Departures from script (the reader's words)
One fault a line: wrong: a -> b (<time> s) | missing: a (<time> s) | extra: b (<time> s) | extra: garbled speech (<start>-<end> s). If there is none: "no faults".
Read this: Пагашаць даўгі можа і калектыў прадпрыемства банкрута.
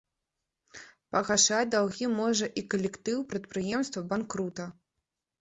no faults